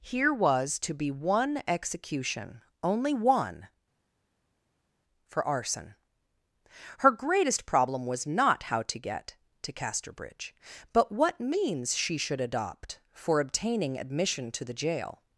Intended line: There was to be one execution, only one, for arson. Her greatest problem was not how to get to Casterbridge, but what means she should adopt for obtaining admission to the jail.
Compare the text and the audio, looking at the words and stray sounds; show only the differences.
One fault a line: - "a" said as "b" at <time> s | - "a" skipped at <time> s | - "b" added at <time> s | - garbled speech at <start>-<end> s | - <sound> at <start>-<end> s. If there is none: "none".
- "There" said as "Here" at 0.0 s